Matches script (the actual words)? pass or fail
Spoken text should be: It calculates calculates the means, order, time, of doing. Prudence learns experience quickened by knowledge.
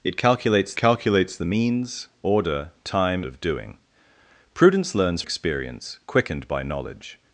pass